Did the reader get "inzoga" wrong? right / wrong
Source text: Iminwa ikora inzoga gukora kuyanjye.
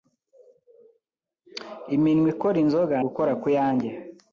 right